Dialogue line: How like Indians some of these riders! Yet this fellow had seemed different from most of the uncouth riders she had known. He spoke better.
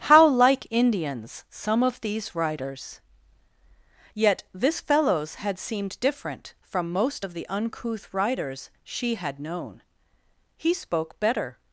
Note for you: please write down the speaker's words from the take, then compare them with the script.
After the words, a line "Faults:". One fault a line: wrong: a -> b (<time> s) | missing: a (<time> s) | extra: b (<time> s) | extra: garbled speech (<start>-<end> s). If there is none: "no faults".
How like Indians some of these riders! Yet this fellows had seemed different from most of the uncouth riders she had known. He spoke better.
Faults:
wrong: fellow -> fellows (4.8 s)